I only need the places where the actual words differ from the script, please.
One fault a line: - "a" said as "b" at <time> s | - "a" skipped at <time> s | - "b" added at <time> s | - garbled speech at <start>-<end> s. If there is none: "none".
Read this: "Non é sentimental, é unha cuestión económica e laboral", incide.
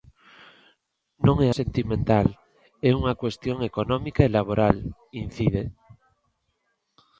none